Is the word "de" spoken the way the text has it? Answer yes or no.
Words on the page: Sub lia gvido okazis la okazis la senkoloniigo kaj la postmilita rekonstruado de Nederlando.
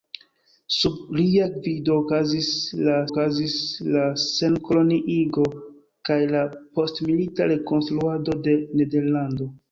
yes